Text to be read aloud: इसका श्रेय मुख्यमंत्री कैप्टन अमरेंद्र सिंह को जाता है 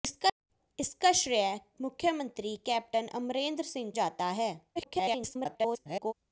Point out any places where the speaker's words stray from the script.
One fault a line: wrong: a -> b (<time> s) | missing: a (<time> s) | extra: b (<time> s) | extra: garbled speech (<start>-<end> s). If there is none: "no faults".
missing: को (3.9 s)
extra: garbled speech (4.8-6.1 s)